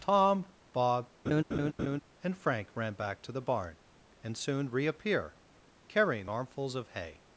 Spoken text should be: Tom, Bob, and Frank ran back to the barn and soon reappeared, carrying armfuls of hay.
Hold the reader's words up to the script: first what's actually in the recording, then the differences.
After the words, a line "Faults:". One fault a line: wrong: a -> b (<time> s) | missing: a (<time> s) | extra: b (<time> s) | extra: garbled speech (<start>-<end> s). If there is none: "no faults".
Tom, Bob, and Frank ran back to the barn and soon reappear, carrying armfuls of hay.
Faults:
wrong: reappeared -> reappear (4.7 s)